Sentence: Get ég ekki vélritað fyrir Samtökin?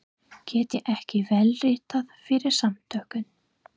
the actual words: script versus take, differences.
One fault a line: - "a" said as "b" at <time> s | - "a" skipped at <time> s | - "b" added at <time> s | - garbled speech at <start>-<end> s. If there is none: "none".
none